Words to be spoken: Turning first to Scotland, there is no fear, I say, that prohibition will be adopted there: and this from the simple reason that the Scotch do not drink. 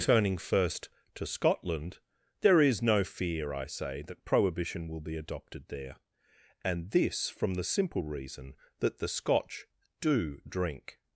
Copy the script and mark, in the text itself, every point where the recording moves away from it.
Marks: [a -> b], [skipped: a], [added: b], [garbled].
Turning first to Scotland, there is no fear, I say, that prohibition will be adopted there: and this from the simple reason that the Scotch do [skipped: not] drink.